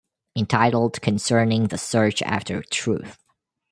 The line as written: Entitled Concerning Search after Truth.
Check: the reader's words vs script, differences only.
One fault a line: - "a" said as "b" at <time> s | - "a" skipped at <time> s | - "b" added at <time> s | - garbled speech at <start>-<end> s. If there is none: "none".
- "the" added at 1.7 s